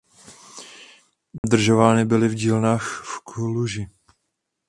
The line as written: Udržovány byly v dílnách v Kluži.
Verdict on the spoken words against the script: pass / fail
pass